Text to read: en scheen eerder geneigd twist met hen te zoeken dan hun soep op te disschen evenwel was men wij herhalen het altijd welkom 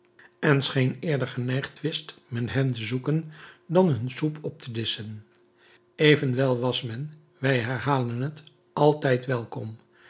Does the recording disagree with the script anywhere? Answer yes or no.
no